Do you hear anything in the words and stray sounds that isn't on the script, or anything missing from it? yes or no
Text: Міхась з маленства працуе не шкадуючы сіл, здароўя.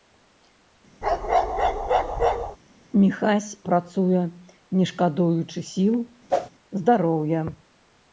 yes